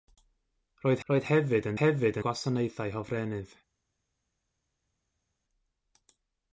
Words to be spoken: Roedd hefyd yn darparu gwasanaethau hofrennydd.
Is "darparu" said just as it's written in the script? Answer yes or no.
no